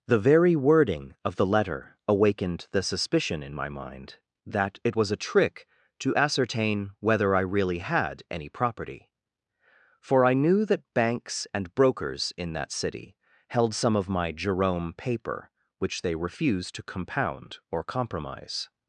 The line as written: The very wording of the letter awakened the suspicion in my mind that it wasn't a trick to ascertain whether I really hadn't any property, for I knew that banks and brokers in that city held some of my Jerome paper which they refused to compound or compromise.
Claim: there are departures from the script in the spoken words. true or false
true